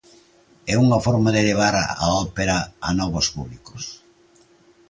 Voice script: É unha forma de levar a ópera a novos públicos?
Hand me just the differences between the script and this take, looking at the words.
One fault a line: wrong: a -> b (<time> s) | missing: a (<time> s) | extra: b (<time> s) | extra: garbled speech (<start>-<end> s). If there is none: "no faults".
no faults